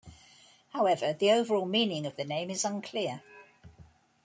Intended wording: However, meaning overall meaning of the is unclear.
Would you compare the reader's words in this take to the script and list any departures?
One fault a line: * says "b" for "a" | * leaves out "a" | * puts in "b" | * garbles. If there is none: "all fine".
* says "the" for "meaning"
* puts in "name"